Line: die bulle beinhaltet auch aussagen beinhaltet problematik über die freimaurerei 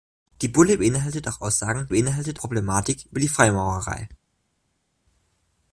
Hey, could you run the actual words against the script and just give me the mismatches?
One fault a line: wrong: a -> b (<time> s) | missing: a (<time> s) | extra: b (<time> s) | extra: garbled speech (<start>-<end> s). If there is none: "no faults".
no faults